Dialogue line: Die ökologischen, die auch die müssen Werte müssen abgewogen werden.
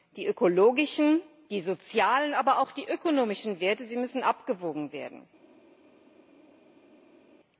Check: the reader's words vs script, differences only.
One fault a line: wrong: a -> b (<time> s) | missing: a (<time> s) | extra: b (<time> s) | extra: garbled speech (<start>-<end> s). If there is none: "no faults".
extra: sozialen aber (1.6 s)
wrong: müssen -> ökonomischen (2.9 s)